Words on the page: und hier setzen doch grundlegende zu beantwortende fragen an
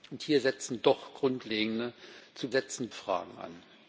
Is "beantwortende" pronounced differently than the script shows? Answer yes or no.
yes